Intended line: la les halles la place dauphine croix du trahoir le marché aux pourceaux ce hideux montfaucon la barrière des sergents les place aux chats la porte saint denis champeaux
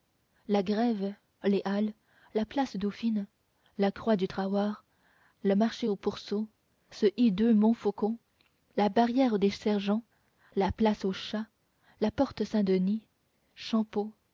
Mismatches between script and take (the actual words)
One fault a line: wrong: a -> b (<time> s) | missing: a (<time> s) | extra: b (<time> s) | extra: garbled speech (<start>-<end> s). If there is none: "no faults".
extra: grève (0.6 s)
extra: la (3.8 s)
wrong: les -> la (10.5 s)